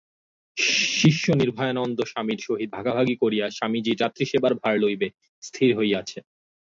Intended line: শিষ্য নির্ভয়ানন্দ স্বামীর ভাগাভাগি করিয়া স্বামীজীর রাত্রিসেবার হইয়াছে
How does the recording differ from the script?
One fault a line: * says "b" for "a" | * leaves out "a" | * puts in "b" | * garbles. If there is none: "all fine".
* puts in "সহিত"
* puts in "ভার লইবে স্থির"